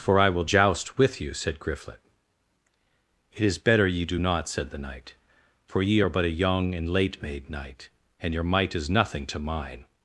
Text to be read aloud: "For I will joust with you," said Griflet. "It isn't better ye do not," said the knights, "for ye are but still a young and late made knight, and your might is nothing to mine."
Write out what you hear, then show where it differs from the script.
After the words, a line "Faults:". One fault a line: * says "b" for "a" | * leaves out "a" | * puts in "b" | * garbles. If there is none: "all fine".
"For I will joust with you," said Griflet. "It is better ye do not," said the knight, "for ye are but a young and late made knight, and your might is nothing to mine."
Faults:
* says "is" for "isn't"
* says "knight" for "knights"
* leaves out "still"